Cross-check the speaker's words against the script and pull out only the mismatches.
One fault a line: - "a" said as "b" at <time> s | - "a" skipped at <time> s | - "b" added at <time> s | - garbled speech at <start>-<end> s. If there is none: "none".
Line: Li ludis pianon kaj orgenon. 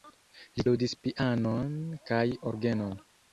none